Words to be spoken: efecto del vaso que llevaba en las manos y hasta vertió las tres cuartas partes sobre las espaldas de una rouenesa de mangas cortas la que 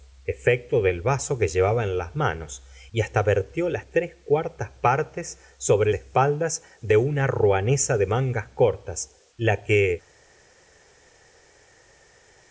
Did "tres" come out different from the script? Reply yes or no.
no